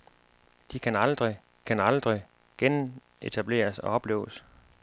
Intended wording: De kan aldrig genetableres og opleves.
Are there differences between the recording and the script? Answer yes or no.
yes